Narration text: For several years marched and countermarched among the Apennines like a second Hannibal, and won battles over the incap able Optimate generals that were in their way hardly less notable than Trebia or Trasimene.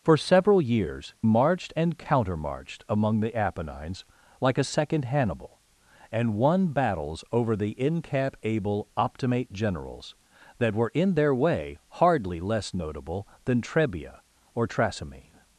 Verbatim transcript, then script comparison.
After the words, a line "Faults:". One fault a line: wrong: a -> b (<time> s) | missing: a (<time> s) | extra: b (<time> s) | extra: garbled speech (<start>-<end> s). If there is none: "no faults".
For several years marched and countermarched among the Apennines like a second Hannibal, and won battles over the incap able Optimate generals that were in their way hardly less notable than Trebia or Trasimene.
Faults:
no faults